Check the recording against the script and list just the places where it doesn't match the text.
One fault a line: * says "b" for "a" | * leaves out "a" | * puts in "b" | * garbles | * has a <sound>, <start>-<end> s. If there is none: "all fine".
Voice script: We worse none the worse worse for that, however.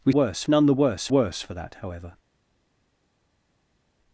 all fine